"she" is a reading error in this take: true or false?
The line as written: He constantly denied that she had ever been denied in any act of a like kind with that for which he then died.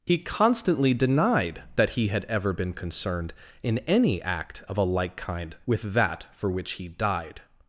true